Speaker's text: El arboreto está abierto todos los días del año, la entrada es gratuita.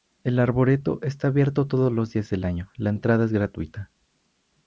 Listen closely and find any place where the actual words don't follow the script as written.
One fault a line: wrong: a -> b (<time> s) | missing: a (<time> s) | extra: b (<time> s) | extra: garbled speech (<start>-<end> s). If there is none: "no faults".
no faults